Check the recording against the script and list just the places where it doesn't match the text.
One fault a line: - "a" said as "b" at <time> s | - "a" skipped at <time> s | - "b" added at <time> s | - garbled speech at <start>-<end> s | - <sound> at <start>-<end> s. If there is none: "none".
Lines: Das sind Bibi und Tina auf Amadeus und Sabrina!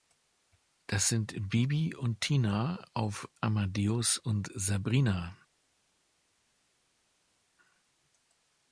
none